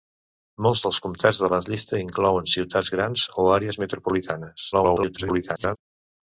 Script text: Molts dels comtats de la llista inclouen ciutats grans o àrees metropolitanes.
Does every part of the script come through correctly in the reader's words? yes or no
no